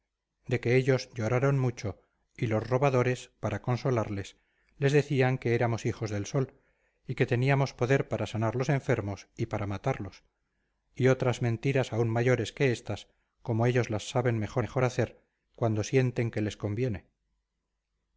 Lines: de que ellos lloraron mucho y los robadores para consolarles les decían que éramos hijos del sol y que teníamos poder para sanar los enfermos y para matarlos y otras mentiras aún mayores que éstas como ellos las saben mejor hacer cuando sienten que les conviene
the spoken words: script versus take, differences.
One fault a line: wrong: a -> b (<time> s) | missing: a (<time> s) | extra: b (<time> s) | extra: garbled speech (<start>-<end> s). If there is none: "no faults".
extra: mejor (14.6 s)